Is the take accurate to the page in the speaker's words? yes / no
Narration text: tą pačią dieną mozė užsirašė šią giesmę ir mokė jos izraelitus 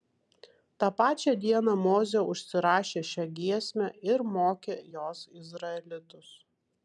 yes